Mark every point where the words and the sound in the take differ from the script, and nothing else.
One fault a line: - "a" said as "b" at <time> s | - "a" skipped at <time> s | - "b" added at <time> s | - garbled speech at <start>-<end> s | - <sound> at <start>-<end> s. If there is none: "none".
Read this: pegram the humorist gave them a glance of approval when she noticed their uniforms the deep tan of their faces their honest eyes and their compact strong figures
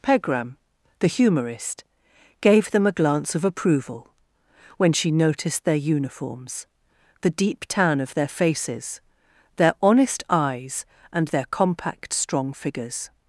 none